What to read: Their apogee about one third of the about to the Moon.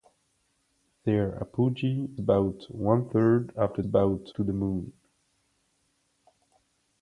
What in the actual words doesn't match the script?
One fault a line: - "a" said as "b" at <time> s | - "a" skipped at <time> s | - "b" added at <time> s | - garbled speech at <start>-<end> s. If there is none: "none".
none